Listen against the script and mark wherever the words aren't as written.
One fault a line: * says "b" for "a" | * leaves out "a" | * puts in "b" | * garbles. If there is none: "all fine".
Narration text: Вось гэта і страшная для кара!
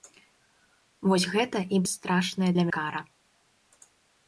all fine